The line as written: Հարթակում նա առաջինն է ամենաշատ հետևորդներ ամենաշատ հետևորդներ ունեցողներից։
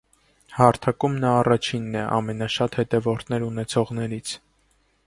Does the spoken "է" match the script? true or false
true